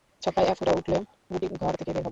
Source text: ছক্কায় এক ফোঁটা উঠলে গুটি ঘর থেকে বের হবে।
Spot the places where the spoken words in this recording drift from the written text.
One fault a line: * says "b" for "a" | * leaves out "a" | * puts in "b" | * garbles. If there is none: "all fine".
all fine